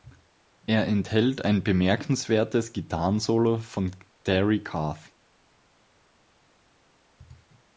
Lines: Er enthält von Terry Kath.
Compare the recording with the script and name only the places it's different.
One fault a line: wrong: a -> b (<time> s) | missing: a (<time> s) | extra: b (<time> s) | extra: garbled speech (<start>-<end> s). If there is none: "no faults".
extra: ein bemerkenswertes Gitarrensolo (1.4 s)